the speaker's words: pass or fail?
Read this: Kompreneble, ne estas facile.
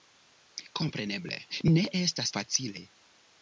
pass